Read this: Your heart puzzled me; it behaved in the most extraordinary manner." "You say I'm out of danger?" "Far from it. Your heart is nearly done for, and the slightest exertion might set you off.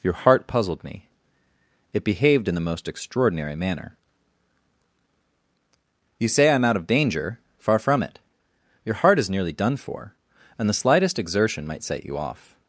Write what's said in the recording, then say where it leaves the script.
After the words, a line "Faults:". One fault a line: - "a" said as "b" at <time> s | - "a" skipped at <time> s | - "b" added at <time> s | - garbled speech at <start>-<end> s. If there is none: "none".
Your heart puzzled me; it behaved in the most extraordinary manner." "You say I'm out of danger?" "Far from it. Your heart is nearly done for, and the slightest exertion might set you off.
Faults:
none